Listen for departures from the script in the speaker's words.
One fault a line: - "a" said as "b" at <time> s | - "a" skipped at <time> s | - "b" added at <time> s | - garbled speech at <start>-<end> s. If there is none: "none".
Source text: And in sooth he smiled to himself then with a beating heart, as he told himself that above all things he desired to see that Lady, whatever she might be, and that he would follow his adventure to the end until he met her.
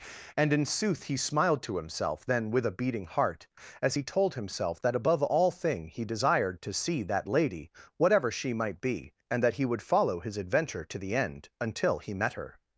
- "things" said as "thing" at 5.5 s